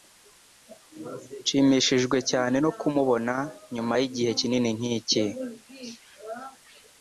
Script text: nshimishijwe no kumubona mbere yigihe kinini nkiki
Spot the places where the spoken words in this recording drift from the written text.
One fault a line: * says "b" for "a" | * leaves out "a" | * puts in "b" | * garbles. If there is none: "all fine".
* puts in "cyane"
* says "nyuma" for "mbere"